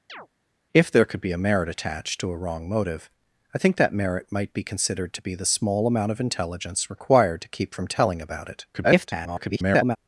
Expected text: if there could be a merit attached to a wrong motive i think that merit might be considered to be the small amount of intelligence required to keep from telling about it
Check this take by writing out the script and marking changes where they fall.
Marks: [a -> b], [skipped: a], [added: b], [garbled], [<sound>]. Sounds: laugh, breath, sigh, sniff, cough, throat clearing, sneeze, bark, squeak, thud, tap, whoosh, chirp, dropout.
[chirp] if there could be a merit attached to a wrong motive i think that merit might be considered to be the small amount of intelligence required to keep from telling about it [garbled]